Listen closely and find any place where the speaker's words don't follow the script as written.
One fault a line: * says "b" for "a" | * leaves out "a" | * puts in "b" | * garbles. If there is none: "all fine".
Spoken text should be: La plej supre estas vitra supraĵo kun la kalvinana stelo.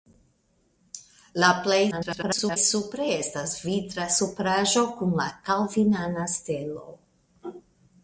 * garbles